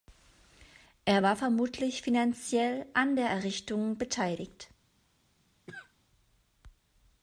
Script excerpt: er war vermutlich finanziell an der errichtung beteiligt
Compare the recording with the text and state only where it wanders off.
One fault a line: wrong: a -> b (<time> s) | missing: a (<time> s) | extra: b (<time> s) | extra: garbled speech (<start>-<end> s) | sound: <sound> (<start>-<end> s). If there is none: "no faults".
sound: cough (5.7-5.9 s)